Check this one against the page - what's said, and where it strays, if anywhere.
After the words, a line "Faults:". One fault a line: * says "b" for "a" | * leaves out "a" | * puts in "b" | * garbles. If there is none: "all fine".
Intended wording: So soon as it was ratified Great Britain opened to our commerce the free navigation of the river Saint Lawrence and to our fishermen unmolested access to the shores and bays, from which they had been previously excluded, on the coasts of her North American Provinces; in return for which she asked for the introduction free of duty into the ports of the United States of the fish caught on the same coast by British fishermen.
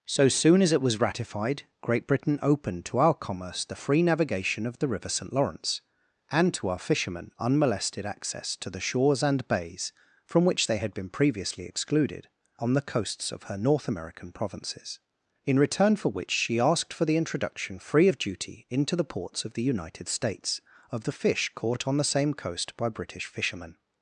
So soon as it was ratified Great Britain opened to our commerce the free navigation of the river Saint Lawrence and to our fishermen unmolested access to the shores and bays, from which they had been previously excluded, on the coasts of her North American Provinces; in return for which she asked for the introduction free of duty into the ports of the United States of the fish caught on the same coast by British fishermen.
Faults:
all fine